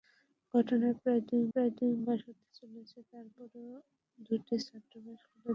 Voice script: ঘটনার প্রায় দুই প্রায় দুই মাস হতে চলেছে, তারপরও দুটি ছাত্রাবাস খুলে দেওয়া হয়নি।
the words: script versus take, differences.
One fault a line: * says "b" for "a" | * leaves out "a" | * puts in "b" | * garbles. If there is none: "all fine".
all fine